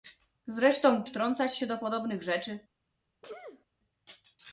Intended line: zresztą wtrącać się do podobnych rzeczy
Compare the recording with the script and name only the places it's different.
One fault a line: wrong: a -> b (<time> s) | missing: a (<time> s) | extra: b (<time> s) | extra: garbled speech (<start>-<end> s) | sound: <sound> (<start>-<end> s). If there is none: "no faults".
sound: sneeze (3.2-3.7 s)